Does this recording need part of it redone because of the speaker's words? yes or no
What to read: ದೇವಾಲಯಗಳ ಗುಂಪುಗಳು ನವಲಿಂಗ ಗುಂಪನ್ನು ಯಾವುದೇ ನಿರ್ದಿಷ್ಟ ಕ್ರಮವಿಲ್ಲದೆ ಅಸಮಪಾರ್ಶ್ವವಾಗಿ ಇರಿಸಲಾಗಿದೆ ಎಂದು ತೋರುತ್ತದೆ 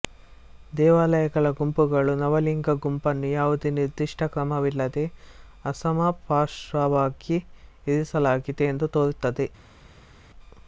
no